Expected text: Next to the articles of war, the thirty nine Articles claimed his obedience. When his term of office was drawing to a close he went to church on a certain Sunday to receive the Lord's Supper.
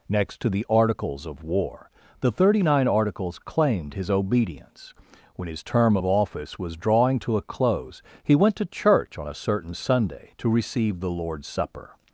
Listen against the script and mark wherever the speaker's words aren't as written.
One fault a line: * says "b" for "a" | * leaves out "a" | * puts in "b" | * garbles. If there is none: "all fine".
all fine